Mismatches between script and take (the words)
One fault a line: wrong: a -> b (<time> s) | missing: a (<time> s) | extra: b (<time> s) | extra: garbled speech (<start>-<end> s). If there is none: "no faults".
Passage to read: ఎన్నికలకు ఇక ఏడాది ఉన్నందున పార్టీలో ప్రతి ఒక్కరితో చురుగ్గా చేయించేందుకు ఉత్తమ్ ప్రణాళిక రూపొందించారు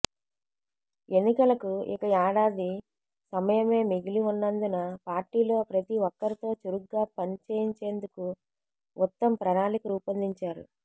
extra: సమయమే మిగిలి (3.3 s)
extra: పని (7.2 s)